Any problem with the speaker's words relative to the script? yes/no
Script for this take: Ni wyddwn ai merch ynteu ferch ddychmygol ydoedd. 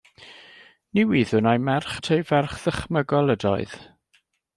no